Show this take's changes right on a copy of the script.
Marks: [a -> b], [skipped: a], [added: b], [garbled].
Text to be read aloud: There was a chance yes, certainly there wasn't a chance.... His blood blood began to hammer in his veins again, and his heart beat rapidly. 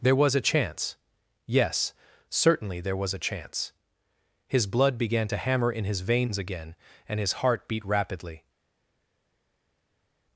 There was a chance yes, certainly there [wasn't -> was] a chance.... His blood [skipped: blood] began to hammer in his veins again, and his heart beat rapidly.